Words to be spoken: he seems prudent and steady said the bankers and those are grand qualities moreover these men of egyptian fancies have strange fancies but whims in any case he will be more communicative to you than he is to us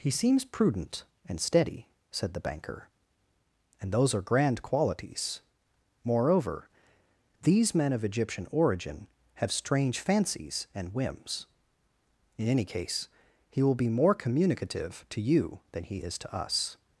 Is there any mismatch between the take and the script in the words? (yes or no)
yes